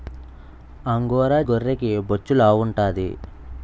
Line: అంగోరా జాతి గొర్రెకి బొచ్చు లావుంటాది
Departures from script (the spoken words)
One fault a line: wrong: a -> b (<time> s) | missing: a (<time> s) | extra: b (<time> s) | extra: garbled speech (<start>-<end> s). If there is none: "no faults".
missing: జాతి (1.4 s)